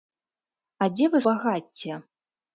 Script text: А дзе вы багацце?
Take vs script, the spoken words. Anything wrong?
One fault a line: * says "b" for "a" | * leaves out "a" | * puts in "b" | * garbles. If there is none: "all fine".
all fine